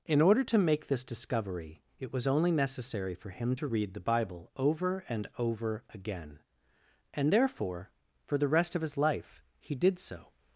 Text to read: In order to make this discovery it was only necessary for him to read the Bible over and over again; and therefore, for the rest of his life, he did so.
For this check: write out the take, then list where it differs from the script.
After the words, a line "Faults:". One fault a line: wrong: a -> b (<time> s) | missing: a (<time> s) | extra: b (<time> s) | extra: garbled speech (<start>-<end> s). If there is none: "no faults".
In order to make this discovery it was only necessary for him to read the Bible over and over again; and therefore, for the rest of his life, he did so.
Faults:
no faults